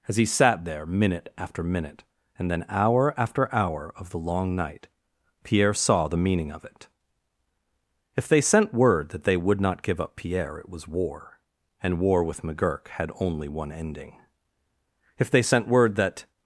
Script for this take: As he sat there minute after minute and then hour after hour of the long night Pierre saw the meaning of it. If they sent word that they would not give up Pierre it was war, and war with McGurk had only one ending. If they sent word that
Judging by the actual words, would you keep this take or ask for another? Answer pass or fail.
pass